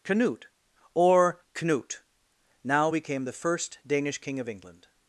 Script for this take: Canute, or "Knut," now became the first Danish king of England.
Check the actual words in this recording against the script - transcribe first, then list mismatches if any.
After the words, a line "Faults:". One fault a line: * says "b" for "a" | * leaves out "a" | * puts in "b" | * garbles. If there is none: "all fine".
Canute, or "Knut," now became the first Danish king of England.
Faults:
all fine